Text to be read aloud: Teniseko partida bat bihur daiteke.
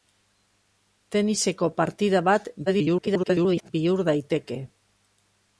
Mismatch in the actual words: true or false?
true